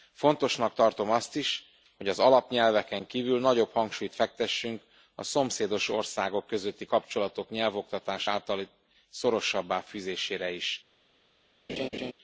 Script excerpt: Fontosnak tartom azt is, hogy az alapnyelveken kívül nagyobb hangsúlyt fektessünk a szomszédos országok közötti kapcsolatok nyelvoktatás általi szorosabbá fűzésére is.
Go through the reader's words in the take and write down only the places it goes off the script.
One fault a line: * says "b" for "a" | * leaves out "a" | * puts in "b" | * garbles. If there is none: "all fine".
all fine